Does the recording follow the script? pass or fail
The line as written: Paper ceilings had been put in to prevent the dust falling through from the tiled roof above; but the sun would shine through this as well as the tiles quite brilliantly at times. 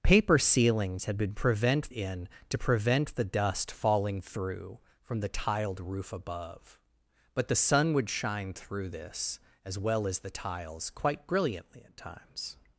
fail